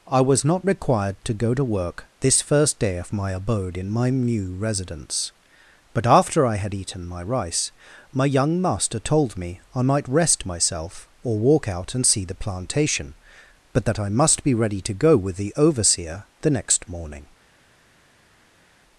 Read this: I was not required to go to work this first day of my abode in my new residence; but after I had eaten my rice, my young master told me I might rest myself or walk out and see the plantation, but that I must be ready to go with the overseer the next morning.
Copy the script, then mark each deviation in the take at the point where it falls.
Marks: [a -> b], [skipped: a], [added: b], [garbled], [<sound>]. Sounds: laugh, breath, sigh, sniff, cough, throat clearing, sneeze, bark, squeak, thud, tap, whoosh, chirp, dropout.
I was not required to go to work this first day of my abode in my new residence; but after I had eaten my rice, my young master told me I might rest myself or walk out and see the plantation, but that I must be ready to go with the overseer the next morning.